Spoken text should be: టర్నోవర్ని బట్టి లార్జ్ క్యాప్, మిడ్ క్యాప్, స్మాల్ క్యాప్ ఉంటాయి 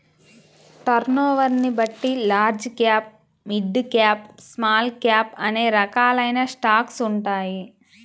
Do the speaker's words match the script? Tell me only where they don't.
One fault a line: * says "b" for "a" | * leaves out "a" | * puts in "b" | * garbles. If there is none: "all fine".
* puts in "అనే రకాలైన స్టాక్స్"